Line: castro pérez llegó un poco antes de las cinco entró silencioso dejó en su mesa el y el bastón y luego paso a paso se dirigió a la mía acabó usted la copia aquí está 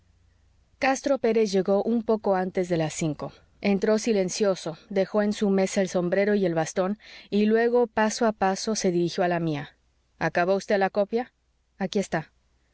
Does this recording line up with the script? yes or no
no